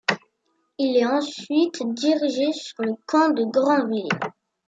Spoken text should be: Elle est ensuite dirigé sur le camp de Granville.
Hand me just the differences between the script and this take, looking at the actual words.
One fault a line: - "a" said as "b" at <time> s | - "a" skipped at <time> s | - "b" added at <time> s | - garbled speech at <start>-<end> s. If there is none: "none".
- "Elle" said as "Il" at 0.8 s